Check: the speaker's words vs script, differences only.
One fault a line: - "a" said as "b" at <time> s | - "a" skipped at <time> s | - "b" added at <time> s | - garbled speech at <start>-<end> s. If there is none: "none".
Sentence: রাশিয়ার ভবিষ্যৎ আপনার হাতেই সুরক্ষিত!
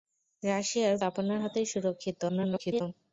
- "ভবিষ্যৎ" skipped at 0.9 s
- garbled speech at 2.3-2.8 s